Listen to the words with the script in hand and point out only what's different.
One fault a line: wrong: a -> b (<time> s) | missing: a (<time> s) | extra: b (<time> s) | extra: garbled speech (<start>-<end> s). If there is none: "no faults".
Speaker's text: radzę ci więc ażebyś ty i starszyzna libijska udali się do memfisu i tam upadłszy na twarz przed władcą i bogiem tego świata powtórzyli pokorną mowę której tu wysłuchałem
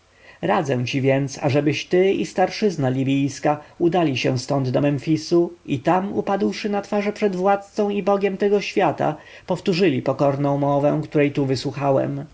extra: stąd (4.4 s)